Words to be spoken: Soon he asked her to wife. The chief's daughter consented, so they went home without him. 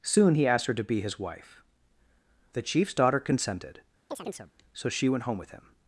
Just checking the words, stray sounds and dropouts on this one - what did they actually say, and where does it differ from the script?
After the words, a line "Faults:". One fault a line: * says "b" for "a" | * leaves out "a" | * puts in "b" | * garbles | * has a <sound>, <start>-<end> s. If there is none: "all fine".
Soon he asked her to be his wife. The chief's daughter consented, so she went home with him.
Faults:
* puts in "be his"
* has a chirp, 4.1-4.5 s
* says "she" for "they"
* says "with" for "without"